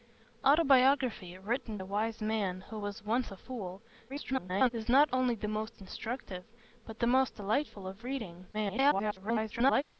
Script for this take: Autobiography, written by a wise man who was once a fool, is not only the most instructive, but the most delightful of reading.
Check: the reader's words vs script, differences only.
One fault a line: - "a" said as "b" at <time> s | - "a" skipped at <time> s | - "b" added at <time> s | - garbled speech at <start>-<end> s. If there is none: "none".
- "by" skipped at 1.8 s
- garbled speech at 4.1-4.7 s
- garbled speech at 8.5-9.8 s